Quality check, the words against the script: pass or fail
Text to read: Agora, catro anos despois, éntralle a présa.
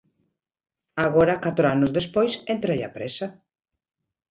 pass